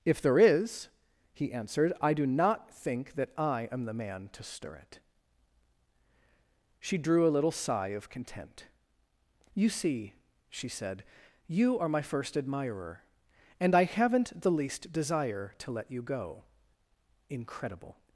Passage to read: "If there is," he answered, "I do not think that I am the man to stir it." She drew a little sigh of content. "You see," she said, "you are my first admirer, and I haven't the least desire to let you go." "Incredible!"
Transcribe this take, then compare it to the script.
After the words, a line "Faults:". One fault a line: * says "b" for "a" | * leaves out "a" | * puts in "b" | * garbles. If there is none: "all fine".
"If there is," he answered, "I do not think that I am the man to stir it." She drew a little sigh of content. "You see," she said, "you are my first admirer, and I haven't the least desire to let you go." "Incredible!"
Faults:
all fine